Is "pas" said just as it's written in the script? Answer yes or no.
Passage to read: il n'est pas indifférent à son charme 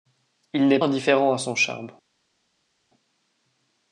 no